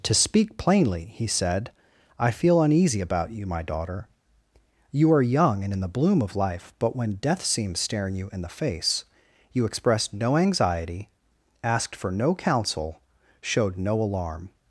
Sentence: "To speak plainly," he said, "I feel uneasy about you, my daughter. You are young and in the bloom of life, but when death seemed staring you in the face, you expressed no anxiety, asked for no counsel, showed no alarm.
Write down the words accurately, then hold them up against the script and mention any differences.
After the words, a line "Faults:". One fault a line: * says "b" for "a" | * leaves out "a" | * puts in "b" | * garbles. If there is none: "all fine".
"To speak plainly," he said, "I feel uneasy about you, my daughter. You are young and in the bloom of life, but when death seemed staring you in the face, you expressed no anxiety, asked for no counsel, showed no alarm.
Faults:
all fine